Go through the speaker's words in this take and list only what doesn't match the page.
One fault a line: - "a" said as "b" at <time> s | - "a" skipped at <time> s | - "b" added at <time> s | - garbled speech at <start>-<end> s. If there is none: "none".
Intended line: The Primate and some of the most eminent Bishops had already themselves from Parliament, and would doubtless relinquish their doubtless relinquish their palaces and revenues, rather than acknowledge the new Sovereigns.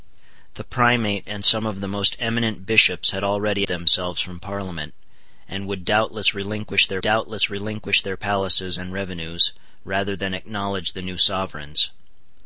none